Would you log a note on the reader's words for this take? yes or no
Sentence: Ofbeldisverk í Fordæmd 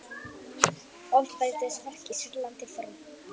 yes